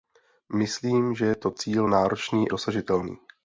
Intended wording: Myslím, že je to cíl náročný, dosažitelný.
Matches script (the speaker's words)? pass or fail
pass